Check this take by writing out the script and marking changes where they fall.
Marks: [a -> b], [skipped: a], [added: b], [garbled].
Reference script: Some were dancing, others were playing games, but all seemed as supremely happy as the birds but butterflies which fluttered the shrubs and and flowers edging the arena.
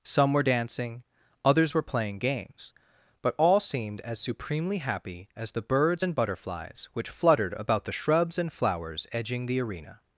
Some were dancing, others were playing games, but all seemed as supremely happy as the birds [but -> and] butterflies which fluttered [added: about] the shrubs and [skipped: and] flowers edging the arena.